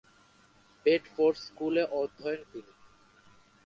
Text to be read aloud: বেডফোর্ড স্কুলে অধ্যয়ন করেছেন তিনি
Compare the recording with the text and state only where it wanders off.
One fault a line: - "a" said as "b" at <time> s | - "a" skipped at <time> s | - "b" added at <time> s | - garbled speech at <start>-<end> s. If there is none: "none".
- "করেছেন" skipped at 2.4 s